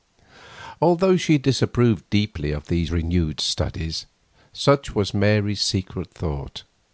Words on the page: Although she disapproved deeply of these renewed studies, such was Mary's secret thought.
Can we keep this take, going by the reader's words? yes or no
yes